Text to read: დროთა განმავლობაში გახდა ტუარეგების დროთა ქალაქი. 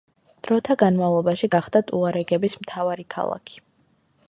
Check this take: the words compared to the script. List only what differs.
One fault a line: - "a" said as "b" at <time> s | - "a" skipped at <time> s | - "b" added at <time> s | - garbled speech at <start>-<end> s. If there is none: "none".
- "დროთა" said as "მთავარი" at 2.6 s